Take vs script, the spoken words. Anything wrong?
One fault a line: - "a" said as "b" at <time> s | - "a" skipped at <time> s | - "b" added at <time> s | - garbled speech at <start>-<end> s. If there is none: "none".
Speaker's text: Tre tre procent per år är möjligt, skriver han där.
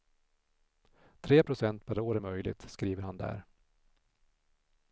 - "tre" skipped at 1.4 s